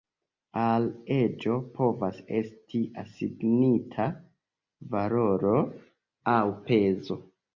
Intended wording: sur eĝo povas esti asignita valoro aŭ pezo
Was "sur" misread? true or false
true